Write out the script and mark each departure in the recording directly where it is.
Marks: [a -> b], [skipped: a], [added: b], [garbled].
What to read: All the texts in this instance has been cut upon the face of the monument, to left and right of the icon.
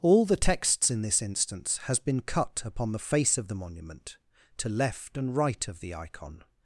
All the texts in this instance has been cut upon the face of the monument, to left and right of the icon.